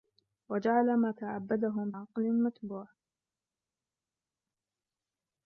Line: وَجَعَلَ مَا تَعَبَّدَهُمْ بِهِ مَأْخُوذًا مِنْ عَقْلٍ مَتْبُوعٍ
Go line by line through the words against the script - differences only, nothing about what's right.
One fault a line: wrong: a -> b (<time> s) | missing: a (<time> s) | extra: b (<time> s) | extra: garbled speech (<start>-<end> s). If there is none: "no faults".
missing: بِهِ مَأْخُوذًا مِنْ (1.9 s)